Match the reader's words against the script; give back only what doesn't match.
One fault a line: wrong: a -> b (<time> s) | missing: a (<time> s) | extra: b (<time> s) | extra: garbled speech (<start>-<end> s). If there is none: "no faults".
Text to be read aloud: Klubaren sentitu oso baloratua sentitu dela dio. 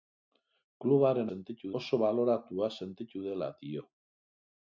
no faults